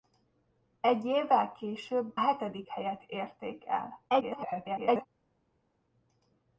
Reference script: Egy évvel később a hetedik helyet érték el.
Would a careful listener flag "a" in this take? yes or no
yes